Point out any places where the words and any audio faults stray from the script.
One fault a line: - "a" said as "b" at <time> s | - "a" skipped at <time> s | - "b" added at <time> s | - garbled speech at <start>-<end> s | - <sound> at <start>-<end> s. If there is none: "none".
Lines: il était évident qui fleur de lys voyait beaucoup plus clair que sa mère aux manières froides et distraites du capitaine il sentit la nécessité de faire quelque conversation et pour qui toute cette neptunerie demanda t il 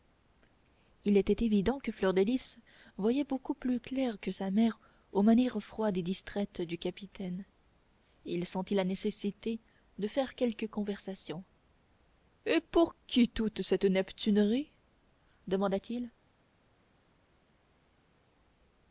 - "qui" said as "que" at 1.8 s